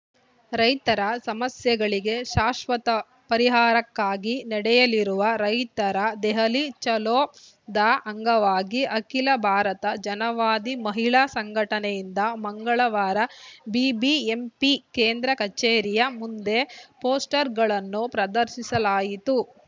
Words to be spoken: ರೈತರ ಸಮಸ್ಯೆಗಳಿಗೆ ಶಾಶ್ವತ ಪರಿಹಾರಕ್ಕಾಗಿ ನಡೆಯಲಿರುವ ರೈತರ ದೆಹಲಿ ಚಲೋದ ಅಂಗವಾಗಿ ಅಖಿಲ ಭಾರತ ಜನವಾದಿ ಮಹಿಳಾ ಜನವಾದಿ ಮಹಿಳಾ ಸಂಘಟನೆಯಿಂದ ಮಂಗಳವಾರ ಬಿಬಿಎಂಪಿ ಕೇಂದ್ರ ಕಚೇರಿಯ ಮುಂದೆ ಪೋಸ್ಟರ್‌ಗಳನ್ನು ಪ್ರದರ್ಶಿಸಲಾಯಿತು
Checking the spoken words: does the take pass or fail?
fail